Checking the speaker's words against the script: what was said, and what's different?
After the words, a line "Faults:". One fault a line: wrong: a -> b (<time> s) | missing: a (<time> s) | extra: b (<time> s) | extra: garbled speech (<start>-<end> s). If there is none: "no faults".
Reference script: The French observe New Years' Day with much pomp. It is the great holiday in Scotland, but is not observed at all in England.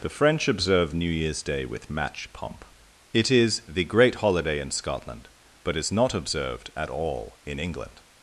The French observe New Years' Day with match pomp. It is the great holiday in Scotland, but is not observed at all in England.
Faults:
wrong: much -> match (1.9 s)